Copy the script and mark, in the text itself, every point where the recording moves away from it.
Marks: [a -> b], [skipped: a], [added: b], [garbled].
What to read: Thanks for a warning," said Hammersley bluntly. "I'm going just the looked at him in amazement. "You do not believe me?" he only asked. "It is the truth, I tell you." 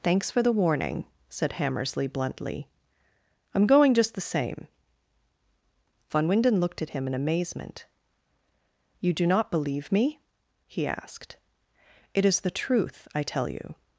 Thanks for [a -> the] warning," said Hammersley bluntly. "I'm going just the [added: same Von Winden] looked at him in amazement. "You do not believe me?" he [skipped: only] asked. "It is the truth, I tell you."